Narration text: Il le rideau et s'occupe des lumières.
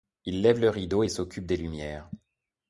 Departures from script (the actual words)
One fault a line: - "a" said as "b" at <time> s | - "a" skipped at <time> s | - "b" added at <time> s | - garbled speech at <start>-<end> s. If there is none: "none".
- "lève" added at 0.4 s